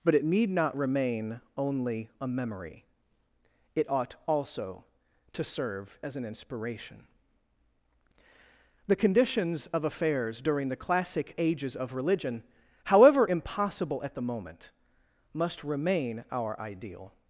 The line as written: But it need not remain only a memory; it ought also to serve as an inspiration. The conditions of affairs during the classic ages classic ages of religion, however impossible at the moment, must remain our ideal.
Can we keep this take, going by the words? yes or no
no